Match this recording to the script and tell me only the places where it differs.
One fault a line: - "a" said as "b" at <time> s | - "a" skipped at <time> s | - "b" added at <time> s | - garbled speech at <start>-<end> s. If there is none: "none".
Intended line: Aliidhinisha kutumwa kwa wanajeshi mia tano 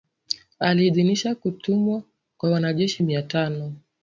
none